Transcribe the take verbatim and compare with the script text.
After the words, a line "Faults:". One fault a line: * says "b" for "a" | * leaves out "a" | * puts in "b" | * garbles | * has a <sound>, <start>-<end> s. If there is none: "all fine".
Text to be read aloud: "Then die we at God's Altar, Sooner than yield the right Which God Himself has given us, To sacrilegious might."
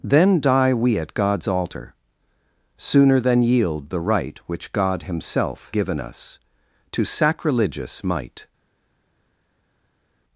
"Then die we at God's Altar, Sooner than yield the right Which God Himself given us, To sacrilegious might."
Faults:
* leaves out "has"